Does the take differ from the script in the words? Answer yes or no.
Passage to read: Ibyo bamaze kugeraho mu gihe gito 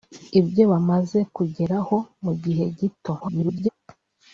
yes